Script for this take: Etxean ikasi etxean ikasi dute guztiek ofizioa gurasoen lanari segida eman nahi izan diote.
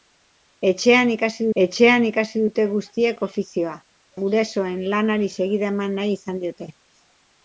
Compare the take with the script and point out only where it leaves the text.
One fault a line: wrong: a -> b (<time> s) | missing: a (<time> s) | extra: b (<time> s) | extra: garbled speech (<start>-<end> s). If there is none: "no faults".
no faults